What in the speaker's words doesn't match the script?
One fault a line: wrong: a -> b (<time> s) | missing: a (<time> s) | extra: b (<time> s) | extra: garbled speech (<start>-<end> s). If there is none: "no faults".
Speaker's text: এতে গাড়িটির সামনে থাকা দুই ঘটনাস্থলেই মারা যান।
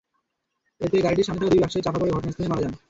extra: ব্যবসায়ী চাপা পড়ে (1.6 s)